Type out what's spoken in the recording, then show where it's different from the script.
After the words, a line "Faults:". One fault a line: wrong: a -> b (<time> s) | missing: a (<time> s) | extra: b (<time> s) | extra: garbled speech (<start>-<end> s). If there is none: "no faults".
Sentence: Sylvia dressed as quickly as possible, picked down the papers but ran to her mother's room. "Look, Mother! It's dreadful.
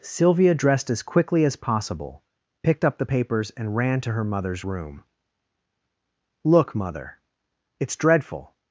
Sylvia dressed as quickly as possible, picked up the papers and ran to her mother's room. "Look, Mother! It's dreadful.
Faults:
wrong: down -> up (2.8 s)
wrong: but -> and (3.5 s)